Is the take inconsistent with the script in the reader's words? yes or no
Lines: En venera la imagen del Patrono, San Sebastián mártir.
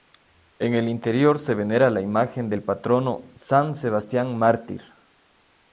yes